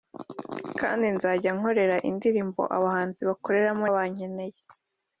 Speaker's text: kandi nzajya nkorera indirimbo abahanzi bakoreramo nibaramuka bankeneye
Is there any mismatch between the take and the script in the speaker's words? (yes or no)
yes